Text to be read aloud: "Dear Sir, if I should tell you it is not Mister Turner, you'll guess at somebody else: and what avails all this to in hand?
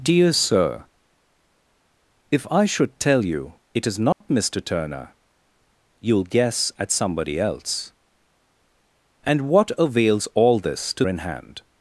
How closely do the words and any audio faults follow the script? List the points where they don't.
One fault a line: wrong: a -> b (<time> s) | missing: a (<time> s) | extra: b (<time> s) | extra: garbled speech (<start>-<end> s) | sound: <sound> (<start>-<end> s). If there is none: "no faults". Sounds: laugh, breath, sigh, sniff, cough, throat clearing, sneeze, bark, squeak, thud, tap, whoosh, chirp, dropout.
sound: dropout (4.1-4.2 s)